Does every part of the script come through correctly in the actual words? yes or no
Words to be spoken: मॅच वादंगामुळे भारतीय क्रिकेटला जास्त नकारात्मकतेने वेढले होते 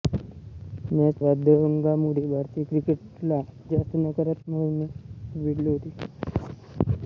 yes